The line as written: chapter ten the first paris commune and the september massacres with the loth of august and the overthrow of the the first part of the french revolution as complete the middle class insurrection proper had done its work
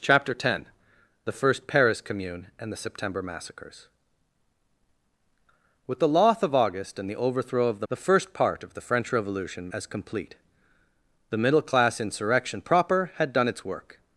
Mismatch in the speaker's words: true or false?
false